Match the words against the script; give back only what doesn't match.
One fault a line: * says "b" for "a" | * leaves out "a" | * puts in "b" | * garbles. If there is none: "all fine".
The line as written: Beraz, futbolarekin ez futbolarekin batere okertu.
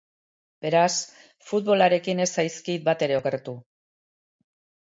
* says "zaizkit" for "futbolarekin"